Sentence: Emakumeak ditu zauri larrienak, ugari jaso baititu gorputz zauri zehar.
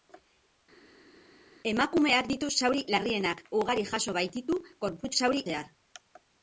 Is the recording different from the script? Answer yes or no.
no